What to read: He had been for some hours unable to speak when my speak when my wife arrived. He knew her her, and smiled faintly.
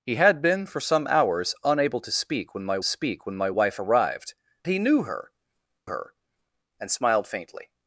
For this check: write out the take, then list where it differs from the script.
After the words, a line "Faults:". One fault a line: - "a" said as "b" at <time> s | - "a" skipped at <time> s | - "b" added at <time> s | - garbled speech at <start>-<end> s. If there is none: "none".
He had been for some hours unable to speak when my speak when my wife arrived. He knew her her, and smiled faintly.
Faults:
none